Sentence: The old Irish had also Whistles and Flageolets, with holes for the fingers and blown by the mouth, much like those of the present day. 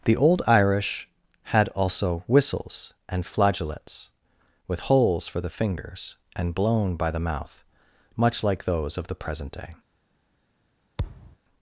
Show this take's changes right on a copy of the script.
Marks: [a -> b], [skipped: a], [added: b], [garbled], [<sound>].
The old Irish had also Whistles and Flageolets, with holes for the fingers and blown by the mouth, much like those of the present day. [thud]